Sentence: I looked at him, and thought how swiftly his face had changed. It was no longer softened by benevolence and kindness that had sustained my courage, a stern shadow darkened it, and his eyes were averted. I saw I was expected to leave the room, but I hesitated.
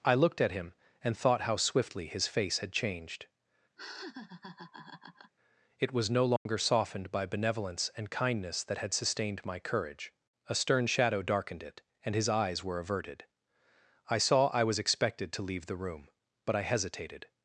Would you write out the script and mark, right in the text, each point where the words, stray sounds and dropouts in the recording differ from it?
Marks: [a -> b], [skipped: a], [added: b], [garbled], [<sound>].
I looked at him, and thought how swiftly his face had changed. [laugh] It was no longer [dropout] softened by benevolence and kindness that had sustained my courage, a stern shadow darkened it, and his eyes were averted. I saw I was expected to leave the room, but I hesitated.